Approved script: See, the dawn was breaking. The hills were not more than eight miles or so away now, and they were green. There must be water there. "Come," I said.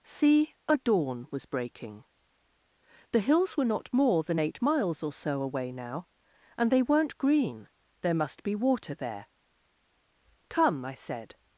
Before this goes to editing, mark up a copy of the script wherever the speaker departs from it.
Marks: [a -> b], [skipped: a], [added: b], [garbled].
See, [the -> a] dawn was breaking. The hills were not more than eight miles or so away now, and they [were -> weren't] green. There must be water there. "Come," I said.